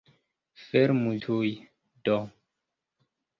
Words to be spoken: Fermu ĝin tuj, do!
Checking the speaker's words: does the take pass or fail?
fail